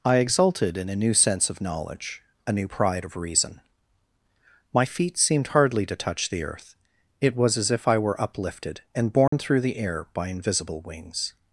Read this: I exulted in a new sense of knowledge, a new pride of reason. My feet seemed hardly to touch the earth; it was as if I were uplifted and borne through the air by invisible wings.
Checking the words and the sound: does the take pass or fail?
fail